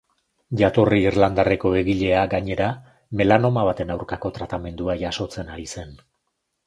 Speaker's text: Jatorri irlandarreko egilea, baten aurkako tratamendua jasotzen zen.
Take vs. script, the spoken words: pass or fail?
fail